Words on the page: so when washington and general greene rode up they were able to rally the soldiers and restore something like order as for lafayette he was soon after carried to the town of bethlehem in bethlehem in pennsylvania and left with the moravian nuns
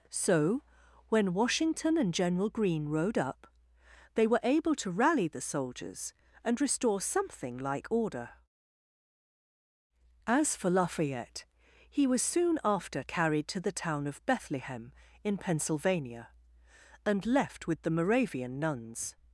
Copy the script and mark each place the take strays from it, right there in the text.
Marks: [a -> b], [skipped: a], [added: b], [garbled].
so when washington and general greene rode up they were able to rally the soldiers and restore something like order as for lafayette he was soon after carried to the town of bethlehem in [skipped: bethlehem in] pennsylvania and left with the moravian nuns